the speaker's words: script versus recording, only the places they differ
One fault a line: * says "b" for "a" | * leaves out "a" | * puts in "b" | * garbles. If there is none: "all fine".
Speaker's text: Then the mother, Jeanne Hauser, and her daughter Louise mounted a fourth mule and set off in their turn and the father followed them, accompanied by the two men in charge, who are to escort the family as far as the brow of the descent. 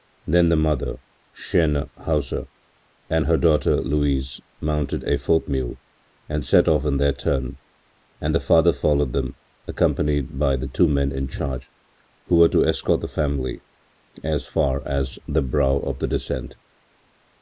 * says "were" for "are"